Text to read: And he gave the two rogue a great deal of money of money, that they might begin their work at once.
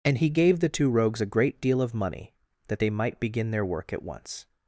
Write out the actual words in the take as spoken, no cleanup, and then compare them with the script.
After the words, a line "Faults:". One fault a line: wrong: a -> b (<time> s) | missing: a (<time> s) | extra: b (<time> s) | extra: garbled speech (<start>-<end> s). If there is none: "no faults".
And he gave the two rogues a great deal of money, that they might begin their work at once.
Faults:
wrong: rogue -> rogues (0.9 s)
missing: of money (2.3 s)